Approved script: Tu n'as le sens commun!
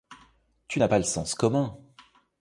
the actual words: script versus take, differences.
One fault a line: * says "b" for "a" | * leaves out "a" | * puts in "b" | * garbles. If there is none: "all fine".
* puts in "pas"